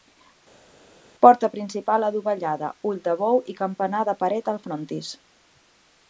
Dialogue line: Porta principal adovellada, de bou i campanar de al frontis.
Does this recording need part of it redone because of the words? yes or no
yes